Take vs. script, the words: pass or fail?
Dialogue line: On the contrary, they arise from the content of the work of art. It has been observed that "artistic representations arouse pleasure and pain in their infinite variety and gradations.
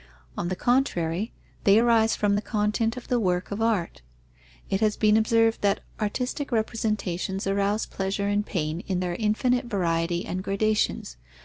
pass